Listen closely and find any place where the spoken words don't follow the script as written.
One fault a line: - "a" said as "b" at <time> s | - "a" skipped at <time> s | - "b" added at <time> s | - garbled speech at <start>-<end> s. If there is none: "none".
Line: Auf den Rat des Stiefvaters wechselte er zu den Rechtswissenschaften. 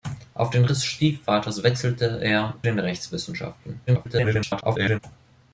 - "Rat" skipped at 0.7 s
- "zu" skipped at 2.6 s
- garbled speech at 3.9-5.0 s